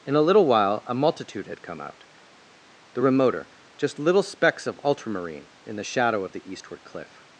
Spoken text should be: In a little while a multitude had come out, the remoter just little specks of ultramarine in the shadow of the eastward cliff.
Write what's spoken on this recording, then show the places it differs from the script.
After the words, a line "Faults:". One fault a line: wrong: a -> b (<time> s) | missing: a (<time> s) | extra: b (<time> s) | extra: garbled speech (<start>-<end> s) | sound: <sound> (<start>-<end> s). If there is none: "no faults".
In a little while a multitude had come out, the remoter just little specks of ultramarine in the shadow of the eastward cliff.
Faults:
no faults